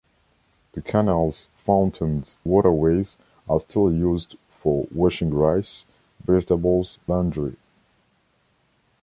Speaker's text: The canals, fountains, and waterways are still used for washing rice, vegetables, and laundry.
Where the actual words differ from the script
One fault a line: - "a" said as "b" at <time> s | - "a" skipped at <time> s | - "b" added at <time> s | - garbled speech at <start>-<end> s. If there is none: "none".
- "and" skipped at 2.4 s
- "and" skipped at 7.0 s